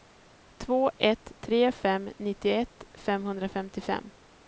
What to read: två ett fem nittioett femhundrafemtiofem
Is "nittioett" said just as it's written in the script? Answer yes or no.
yes